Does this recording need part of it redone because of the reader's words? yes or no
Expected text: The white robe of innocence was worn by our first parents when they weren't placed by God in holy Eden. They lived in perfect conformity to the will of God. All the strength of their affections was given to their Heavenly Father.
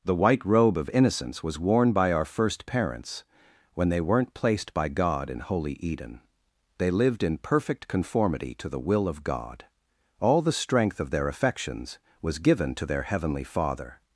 no